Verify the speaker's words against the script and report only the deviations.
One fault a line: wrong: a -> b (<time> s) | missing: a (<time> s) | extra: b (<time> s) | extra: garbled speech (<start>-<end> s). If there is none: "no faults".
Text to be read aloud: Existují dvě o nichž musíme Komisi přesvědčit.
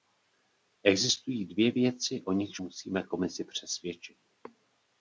extra: věci (1.7 s)